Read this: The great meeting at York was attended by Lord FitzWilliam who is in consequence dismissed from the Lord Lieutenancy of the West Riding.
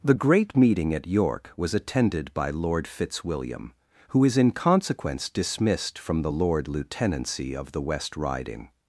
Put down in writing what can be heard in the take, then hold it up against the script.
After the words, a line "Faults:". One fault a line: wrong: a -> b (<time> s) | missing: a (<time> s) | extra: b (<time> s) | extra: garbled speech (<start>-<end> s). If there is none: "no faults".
The great meeting at York was attended by Lord FitzWilliam who is in consequence dismissed from the Lord Lieutenancy of the West Riding.
Faults:
no faults